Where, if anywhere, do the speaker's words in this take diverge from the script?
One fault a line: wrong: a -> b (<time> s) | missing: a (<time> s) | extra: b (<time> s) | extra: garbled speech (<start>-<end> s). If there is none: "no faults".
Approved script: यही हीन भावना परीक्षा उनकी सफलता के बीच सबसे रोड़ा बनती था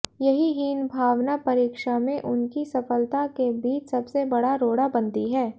extra: में (2.0 s)
extra: बड़ा (4.3 s)
wrong: था -> है (5.3 s)